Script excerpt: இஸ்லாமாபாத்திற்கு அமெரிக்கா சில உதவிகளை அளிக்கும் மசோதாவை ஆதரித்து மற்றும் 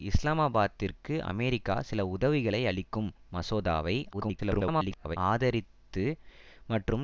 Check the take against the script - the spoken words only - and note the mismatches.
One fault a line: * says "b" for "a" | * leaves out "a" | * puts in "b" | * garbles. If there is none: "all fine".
* garbles